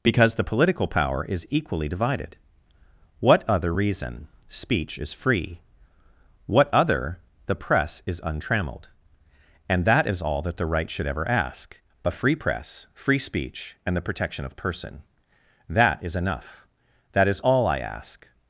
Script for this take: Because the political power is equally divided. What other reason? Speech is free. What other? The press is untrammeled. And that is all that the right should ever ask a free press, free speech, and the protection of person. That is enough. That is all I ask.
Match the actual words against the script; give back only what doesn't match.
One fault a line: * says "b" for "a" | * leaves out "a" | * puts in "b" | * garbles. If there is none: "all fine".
all fine